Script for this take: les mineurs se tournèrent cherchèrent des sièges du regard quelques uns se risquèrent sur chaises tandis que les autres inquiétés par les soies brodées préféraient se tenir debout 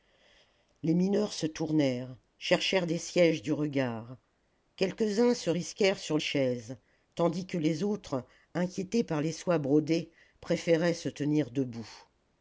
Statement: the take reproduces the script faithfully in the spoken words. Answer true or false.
true